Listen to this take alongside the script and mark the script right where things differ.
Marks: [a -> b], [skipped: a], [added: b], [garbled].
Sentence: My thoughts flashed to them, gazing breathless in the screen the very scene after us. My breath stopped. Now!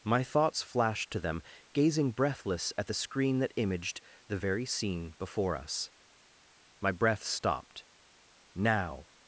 My thoughts flashed to them, gazing breathless [in -> at] the screen [added: that imaged] the very scene [after -> before] us. My breath stopped. Now!